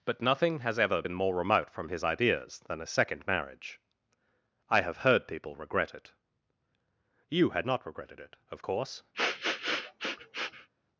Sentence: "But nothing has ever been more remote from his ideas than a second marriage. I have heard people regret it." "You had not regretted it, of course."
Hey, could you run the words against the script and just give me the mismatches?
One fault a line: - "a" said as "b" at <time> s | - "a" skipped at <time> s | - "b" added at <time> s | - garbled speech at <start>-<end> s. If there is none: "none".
none